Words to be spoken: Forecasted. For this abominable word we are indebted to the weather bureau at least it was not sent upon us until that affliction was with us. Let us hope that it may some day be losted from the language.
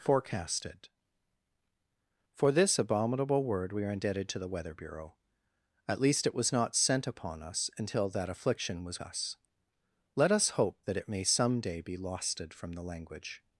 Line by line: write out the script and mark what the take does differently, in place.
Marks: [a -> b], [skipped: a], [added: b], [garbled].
Forecasted. For this abominable word we are indebted to the weather bureau at least it was not sent upon us until that affliction was [skipped: with] us. Let us hope that it may some day be losted from the language.